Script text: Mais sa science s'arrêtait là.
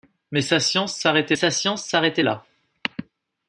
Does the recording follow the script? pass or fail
fail